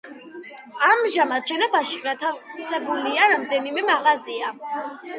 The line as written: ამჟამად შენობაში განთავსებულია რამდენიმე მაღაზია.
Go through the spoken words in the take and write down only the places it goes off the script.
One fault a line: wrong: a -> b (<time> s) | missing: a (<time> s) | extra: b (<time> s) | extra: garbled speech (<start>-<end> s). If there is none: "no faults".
no faults